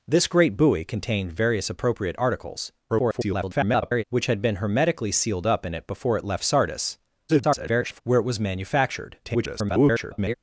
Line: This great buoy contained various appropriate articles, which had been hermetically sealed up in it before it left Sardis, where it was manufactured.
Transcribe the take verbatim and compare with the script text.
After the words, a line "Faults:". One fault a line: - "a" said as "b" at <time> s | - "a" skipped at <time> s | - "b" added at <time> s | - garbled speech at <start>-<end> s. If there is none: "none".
This great buoy contained various appropriate articles, [garbled] which had been hermetically sealed up in it before it left Sardis, [garbled] where it was manufactured. [garbled]
Faults:
- garbled speech at 2.9-4.0 s
- garbled speech at 7.3-8.0 s
- garbled speech at 9.2-10.3 s